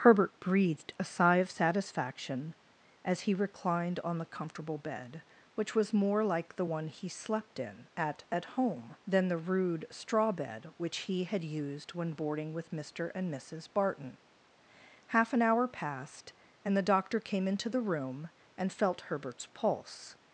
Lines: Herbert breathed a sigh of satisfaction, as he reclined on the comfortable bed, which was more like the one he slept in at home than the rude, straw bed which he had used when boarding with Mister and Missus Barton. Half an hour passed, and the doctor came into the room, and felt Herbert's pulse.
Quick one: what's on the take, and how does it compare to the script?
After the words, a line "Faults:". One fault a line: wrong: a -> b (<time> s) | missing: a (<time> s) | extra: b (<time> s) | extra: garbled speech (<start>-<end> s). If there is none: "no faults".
Herbert breathed a sigh of satisfaction, as he reclined on the comfortable bed, which was more like the one he slept in at at home than the rude, straw bed which he had used when boarding with Mister and Missus Barton. Half an hour passed, and the doctor came into the room, and felt Herbert's pulse.
Faults:
extra: at (8.3 s)